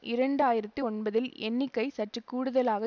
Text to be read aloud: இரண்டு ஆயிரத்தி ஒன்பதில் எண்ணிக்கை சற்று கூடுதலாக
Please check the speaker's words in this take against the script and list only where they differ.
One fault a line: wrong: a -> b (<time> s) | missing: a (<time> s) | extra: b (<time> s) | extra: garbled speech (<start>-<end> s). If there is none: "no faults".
no faults